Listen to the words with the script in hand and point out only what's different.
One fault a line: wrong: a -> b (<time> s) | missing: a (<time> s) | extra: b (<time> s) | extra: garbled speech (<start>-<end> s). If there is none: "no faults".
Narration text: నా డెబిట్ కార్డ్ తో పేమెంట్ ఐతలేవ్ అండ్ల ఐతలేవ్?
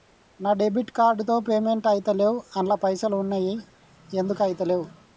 extra: పైసల్ ఉన్నయి ఎందుకు (2.8 s)